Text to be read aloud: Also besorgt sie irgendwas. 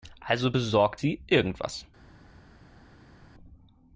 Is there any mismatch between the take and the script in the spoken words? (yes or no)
no